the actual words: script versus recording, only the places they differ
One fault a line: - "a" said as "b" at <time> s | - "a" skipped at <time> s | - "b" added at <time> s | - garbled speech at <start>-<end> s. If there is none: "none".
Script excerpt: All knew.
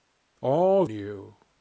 none